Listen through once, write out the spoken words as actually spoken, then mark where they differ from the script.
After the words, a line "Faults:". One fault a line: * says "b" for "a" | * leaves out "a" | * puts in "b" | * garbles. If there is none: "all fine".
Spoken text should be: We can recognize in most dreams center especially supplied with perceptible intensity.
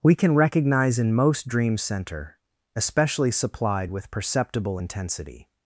We can recognize in most dreams center especially supplied with perceptible intensity.
Faults:
all fine